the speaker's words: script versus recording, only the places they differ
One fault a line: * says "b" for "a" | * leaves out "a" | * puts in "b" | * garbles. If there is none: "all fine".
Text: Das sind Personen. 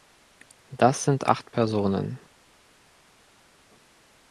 * puts in "acht"